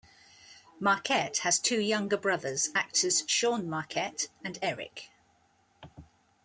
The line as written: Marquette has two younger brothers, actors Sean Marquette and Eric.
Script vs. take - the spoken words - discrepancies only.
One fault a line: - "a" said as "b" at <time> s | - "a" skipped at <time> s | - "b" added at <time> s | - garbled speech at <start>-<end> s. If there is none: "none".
none